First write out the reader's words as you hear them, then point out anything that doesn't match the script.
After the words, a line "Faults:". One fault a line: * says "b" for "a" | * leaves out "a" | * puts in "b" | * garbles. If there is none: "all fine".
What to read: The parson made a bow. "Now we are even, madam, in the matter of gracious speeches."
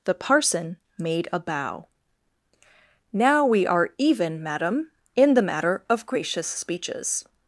The parson made a bow. "Now we are even, madam, in the matter of gracious speeches."
Faults:
all fine